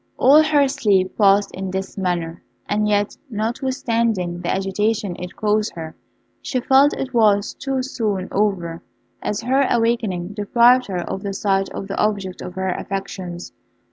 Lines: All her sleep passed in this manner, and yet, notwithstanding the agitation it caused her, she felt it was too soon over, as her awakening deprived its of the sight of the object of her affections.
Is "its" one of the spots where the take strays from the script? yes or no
yes